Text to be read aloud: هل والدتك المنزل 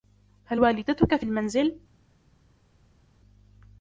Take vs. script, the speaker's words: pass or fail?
fail